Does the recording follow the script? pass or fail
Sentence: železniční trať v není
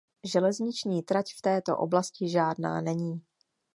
fail